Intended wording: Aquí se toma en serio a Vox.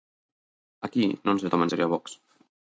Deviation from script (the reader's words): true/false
true